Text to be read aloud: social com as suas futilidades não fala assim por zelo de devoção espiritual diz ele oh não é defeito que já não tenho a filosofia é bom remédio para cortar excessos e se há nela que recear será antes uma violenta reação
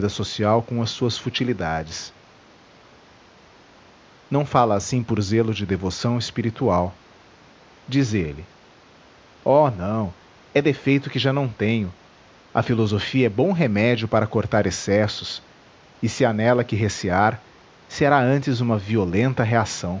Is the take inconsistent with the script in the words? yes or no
no